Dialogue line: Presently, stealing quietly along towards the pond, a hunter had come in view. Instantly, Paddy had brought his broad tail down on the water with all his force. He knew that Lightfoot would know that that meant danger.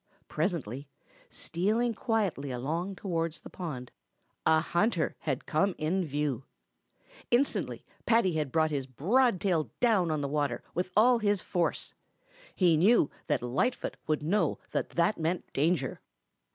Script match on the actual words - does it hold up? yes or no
yes